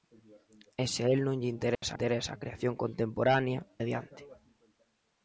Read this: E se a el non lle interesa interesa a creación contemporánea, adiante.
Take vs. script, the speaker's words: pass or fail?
pass